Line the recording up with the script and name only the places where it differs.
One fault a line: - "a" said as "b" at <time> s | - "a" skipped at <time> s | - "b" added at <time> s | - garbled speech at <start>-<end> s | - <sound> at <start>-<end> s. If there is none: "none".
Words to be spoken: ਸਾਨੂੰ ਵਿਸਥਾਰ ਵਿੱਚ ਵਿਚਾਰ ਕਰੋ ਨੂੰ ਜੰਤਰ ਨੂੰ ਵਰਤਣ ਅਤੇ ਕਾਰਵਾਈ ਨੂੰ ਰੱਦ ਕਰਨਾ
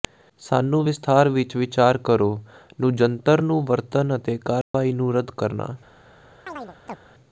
- dropout at 4.6-4.7 s
- chirp at 6.5-7.0 s